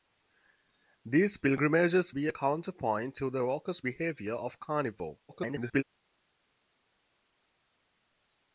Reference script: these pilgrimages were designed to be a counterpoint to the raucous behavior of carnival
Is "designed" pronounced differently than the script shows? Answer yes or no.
yes